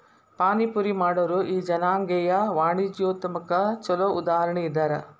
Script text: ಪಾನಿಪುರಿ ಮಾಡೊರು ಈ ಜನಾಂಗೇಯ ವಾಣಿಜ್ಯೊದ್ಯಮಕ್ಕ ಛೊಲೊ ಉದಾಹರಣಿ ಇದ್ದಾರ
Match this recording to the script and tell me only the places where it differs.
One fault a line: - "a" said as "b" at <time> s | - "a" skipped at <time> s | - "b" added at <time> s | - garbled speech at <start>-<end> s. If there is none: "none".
none